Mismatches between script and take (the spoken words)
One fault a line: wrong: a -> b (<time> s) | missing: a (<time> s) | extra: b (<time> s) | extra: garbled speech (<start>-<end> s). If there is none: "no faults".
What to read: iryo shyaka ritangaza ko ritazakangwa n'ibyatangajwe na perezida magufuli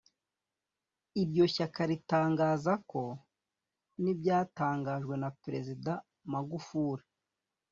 missing: ritazakangwa (3.0 s)